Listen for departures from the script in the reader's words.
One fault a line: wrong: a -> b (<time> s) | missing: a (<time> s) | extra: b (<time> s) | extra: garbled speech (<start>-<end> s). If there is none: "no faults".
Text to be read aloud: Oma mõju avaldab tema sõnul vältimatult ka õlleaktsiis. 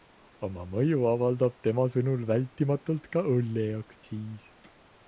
no faults